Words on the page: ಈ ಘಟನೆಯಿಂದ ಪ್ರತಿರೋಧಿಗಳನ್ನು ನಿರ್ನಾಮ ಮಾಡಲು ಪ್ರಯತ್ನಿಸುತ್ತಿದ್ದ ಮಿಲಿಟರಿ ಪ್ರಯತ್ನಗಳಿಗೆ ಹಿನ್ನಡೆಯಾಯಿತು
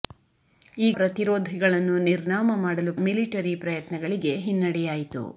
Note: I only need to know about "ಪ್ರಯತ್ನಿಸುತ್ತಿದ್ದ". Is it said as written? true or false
false